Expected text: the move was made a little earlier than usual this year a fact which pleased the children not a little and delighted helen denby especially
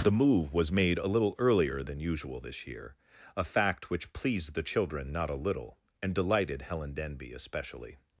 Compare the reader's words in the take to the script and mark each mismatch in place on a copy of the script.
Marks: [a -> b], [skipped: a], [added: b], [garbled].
the move was made a little earlier than usual this year a fact which pleased the children not a little and delighted helen denby especially